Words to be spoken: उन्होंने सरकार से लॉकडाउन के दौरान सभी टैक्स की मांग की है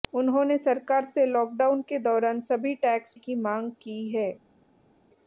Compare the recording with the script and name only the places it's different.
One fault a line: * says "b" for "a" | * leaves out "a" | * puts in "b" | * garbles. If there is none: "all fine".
all fine